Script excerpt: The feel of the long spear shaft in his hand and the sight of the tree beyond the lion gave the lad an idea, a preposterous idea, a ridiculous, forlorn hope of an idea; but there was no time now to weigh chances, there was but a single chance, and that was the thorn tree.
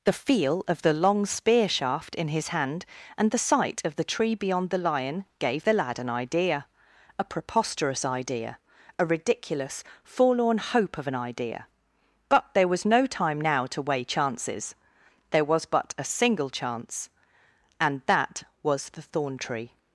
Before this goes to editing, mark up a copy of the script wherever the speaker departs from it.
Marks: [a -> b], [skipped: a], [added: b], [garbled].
The feel of the long spear shaft in his hand and the sight of the tree beyond the lion gave the lad an idea, a preposterous idea, a ridiculous, forlorn hope of an idea; but there was no time now to weigh chances, there was but a single chance, and that was the thorn tree.